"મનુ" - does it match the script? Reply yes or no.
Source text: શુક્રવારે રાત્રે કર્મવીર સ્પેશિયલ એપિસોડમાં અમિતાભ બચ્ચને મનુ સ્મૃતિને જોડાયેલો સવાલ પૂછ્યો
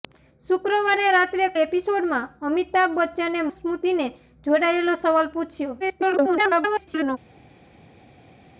no